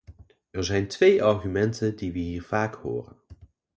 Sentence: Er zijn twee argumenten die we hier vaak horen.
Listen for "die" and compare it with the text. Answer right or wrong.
right